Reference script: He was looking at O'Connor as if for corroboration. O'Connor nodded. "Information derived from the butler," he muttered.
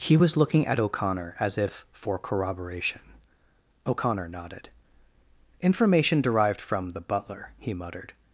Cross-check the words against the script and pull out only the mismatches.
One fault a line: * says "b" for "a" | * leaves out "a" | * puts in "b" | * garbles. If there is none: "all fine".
all fine